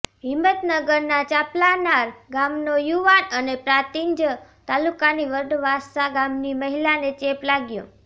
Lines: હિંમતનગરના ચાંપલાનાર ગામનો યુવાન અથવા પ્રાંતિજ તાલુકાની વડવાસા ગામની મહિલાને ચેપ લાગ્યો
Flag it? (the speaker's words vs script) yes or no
yes